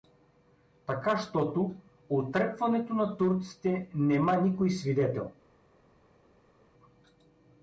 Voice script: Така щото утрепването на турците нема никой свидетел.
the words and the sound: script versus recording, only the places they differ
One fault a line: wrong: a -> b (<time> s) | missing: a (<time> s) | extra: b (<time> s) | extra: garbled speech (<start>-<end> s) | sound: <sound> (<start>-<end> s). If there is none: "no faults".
no faults